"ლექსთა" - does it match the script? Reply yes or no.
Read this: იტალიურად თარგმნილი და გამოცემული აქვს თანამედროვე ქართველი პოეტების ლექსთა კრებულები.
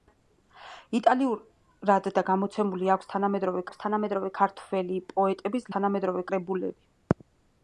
no